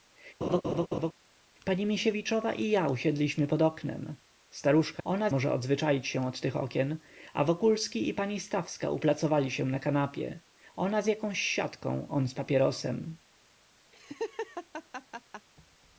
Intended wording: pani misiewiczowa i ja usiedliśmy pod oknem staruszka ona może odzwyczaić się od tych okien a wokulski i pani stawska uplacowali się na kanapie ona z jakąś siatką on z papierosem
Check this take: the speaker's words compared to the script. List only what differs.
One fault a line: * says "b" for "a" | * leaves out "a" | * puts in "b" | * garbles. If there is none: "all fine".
all fine